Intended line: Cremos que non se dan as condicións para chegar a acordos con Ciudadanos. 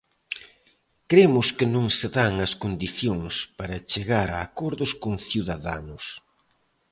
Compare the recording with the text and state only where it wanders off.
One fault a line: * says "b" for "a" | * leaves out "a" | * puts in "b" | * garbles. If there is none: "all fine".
all fine